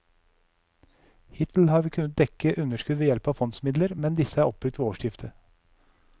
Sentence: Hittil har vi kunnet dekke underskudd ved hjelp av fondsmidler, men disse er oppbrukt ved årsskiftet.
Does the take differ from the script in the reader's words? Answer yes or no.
no